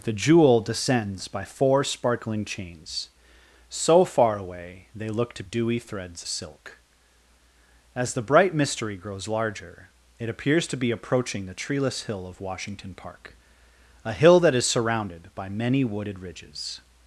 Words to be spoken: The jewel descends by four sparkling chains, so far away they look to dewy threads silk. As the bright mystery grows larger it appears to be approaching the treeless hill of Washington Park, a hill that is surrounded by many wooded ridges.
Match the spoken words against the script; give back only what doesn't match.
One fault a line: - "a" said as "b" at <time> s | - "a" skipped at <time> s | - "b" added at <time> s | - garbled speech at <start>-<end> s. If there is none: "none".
none